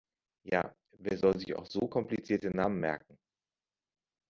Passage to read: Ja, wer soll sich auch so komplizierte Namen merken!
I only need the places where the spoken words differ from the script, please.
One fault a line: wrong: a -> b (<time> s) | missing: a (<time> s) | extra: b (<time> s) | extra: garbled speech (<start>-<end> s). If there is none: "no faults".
no faults